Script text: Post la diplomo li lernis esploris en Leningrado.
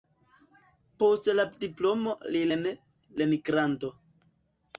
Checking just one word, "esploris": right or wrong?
wrong